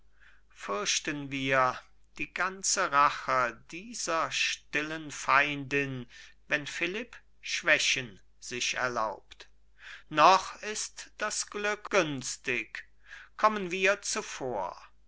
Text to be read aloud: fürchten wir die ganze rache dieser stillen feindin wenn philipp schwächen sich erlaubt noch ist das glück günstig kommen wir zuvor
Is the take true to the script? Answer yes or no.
yes